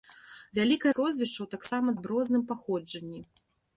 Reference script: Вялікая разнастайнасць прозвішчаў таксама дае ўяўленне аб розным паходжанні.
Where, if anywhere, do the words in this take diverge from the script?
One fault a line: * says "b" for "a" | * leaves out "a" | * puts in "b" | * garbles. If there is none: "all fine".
* leaves out "разнастайнасць"
* leaves out "дае ўяўленне"